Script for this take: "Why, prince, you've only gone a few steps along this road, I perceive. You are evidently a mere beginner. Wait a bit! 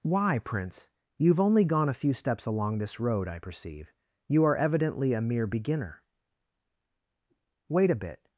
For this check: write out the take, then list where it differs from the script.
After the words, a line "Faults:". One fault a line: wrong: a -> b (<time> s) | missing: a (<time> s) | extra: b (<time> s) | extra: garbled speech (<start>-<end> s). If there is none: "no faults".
"Why, prince, you've only gone a few steps along this road, I perceive. You are evidently a mere beginner. Wait a bit!
Faults:
no faults